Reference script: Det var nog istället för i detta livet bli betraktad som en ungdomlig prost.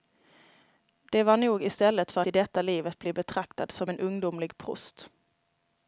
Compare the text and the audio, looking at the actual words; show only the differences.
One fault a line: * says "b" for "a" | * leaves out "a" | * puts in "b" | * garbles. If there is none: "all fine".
all fine